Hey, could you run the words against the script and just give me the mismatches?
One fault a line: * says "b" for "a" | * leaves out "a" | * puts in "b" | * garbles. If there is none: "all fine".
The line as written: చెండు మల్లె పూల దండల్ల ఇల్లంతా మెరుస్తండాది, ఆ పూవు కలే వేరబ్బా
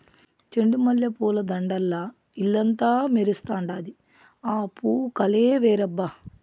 all fine